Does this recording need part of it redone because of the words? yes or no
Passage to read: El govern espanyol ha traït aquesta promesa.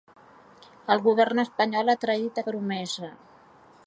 yes